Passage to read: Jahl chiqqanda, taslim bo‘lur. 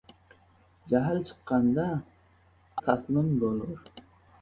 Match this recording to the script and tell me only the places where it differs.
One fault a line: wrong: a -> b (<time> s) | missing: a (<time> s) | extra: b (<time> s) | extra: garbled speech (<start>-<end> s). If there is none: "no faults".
no faults